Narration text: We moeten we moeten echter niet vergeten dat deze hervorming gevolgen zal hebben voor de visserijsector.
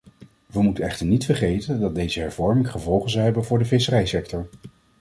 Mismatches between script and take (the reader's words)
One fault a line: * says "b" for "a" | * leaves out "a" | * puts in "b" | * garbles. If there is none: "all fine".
* leaves out "we moeten"